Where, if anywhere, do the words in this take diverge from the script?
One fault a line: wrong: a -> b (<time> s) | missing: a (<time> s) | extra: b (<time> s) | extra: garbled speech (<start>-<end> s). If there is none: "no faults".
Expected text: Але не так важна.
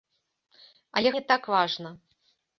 no faults